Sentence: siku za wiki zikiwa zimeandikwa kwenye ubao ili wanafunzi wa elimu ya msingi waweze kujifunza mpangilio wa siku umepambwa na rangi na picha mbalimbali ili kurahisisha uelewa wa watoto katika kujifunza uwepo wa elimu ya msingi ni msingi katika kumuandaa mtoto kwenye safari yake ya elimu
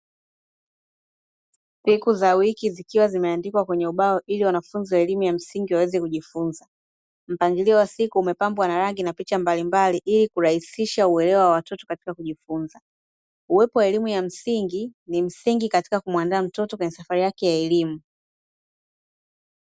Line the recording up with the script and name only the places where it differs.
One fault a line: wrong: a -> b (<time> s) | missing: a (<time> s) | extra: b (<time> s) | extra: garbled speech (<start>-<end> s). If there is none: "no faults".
no faults